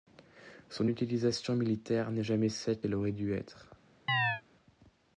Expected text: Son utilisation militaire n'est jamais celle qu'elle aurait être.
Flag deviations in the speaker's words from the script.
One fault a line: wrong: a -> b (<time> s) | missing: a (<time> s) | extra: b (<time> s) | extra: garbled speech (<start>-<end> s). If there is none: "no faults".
extra: dû (3.1 s)